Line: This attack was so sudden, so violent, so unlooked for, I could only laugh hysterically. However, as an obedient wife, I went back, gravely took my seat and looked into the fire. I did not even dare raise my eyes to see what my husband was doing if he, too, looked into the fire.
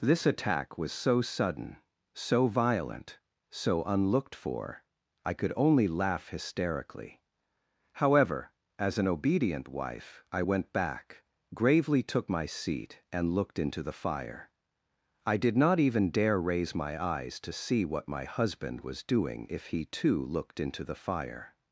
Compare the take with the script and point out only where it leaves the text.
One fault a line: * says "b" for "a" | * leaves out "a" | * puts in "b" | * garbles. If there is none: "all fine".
all fine